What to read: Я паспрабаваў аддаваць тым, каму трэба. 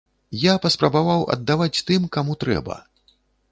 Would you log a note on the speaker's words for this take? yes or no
no